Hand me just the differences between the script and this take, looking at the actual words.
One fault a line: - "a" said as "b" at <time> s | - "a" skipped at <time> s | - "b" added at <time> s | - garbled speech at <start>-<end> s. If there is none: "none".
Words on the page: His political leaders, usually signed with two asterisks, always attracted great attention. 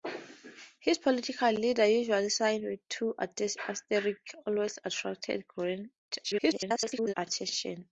- garbled speech at 6.2-7.1 s